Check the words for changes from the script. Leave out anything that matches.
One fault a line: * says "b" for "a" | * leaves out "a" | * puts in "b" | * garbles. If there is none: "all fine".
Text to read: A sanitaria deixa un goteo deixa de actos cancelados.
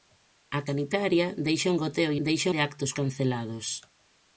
all fine